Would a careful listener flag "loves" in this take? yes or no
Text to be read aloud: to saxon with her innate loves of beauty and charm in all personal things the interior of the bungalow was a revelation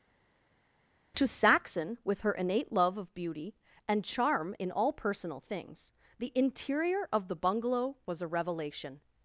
yes